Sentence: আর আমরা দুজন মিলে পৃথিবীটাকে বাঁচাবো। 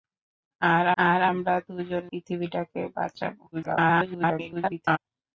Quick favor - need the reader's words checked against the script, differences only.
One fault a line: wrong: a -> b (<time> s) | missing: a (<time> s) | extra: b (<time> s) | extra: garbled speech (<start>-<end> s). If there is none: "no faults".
extra: আর (1.0 s)
missing: মিলে (2.0 s)
extra: garbled speech (3.5-5.0 s)